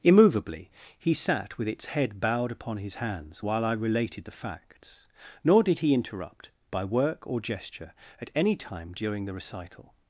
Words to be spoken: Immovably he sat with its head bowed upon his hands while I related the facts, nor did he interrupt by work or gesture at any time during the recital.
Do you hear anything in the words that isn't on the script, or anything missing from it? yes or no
no